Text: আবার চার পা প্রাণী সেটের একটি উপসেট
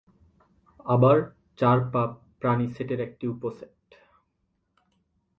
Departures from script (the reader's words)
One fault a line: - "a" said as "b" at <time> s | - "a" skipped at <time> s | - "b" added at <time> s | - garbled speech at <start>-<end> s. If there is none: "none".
none